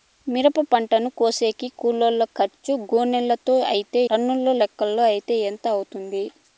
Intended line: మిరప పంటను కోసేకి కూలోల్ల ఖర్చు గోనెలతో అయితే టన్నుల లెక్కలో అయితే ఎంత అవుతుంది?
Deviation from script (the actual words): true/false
false